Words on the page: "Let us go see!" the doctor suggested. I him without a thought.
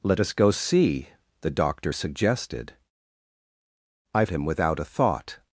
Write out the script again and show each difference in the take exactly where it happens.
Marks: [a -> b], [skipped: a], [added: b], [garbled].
"Let us go see!" the doctor suggested. I him without a thought.